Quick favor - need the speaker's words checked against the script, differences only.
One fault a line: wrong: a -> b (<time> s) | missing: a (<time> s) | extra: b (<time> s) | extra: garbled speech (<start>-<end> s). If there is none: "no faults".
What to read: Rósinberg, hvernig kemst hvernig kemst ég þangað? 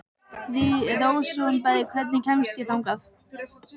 missing: hvernig kemst (2.6 s)